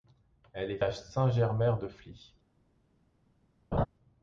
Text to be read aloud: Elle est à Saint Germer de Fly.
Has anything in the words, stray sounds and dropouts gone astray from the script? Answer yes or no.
yes